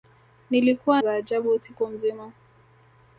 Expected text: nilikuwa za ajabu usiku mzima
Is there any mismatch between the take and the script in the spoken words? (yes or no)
no